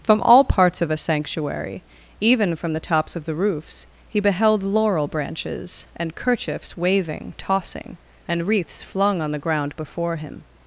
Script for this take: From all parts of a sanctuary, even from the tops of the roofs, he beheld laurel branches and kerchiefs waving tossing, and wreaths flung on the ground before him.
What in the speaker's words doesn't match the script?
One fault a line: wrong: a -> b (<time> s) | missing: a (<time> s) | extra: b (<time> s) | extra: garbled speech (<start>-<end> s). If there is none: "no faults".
no faults